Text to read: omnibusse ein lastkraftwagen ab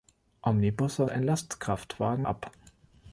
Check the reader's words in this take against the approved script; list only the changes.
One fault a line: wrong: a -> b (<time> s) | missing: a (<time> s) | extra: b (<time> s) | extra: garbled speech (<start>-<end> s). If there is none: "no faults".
no faults